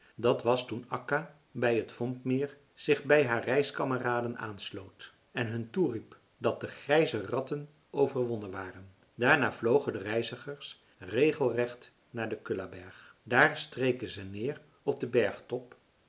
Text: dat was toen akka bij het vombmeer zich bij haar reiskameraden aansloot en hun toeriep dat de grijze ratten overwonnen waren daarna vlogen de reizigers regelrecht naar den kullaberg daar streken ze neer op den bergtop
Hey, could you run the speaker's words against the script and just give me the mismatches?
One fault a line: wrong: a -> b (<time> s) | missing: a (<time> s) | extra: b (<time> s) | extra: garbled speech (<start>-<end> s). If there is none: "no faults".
no faults